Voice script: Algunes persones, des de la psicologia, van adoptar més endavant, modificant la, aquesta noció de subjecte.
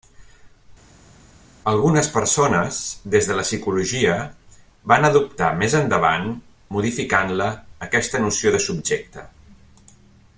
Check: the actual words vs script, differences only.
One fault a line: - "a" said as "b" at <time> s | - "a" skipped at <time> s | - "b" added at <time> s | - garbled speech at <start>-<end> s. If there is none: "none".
none